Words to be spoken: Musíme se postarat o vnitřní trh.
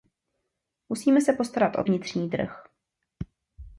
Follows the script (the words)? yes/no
yes